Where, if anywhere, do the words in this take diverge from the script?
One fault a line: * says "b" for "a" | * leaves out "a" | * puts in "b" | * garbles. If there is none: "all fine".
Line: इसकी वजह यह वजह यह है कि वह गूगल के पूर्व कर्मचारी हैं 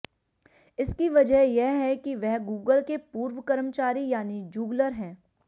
* leaves out "वजह यह"
* puts in "यानी जूगलर"